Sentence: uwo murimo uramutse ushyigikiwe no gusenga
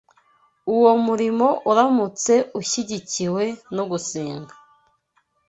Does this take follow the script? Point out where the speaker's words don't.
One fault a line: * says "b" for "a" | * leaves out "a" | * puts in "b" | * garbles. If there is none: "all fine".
all fine